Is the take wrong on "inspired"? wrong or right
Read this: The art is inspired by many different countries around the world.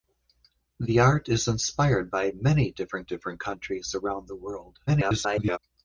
right